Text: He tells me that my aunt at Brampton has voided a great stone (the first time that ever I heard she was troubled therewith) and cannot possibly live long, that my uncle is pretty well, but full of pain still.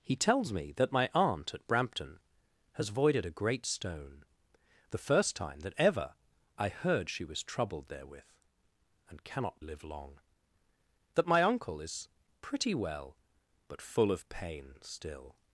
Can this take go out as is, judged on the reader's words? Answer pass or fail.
fail